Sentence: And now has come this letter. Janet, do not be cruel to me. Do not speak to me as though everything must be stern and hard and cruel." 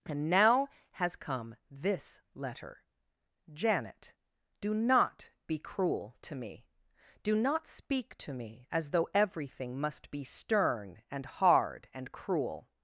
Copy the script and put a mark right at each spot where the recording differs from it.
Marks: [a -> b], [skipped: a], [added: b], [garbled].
And now has come this letter. Janet, do not be cruel to me. Do not speak to me as though everything must be stern and hard and cruel."